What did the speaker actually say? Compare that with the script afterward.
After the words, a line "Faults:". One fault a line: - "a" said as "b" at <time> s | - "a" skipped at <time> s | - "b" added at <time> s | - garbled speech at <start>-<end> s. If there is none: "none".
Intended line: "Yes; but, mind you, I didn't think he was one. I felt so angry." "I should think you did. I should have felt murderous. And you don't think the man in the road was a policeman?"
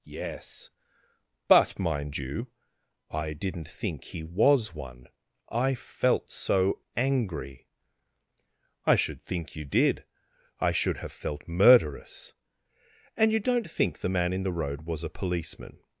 "Yes; but, mind you, I didn't think he was one. I felt so angry." "I should think you did. I should have felt murderous. And you don't think the man in the road was a policeman?"
Faults:
none